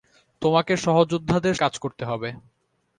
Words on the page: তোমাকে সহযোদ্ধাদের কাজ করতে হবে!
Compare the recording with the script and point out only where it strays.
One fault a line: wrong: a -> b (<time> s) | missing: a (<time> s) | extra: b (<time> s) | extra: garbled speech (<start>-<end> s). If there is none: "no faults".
no faults